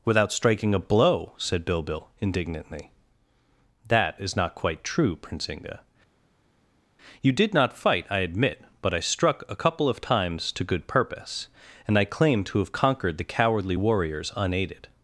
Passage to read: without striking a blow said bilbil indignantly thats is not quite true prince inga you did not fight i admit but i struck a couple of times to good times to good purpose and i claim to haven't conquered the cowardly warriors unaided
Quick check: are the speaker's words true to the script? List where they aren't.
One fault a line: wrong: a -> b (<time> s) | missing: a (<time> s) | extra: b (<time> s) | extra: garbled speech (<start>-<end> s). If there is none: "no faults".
wrong: thats -> that (3.9 s)
missing: times to good (10.9 s)
wrong: haven't -> have (12.6 s)